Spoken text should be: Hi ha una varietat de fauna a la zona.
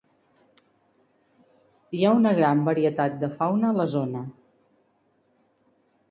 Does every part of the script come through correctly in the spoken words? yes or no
no